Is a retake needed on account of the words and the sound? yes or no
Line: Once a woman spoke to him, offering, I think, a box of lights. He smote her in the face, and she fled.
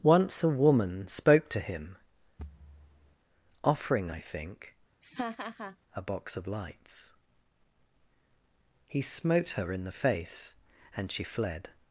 yes